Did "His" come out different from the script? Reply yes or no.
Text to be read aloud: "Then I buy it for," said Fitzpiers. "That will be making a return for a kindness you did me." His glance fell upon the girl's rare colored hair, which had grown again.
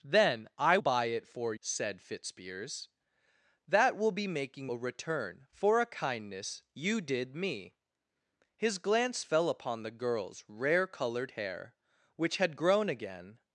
no